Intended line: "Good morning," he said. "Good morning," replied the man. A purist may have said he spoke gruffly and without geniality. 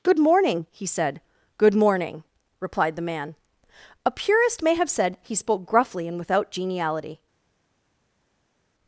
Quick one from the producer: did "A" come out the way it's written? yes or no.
yes